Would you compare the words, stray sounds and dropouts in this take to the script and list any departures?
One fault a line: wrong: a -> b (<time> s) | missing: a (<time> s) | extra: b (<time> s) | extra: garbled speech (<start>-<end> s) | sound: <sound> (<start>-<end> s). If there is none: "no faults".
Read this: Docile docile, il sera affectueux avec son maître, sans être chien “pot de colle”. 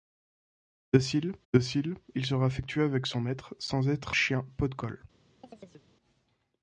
sound: chirp (5.4-5.9 s)